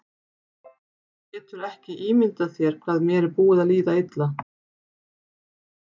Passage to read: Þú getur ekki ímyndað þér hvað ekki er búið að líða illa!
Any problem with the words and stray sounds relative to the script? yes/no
yes